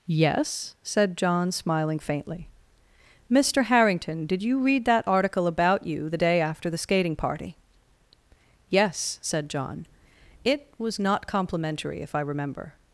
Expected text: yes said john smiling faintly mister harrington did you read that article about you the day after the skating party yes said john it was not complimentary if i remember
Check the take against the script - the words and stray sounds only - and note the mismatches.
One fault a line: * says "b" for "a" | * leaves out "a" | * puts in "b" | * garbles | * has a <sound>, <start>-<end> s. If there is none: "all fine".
all fine